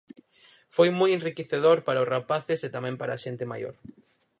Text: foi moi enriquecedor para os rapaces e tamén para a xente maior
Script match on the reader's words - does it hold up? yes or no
yes